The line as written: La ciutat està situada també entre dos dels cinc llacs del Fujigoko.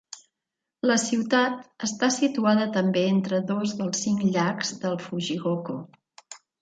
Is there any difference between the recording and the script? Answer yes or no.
no